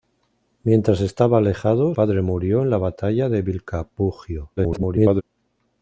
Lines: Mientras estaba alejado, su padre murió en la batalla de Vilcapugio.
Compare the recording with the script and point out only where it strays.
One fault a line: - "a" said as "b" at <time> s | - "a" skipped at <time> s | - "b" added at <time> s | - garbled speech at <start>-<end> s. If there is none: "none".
- "su" skipped at 1.9 s
- garbled speech at 4.6-5.2 s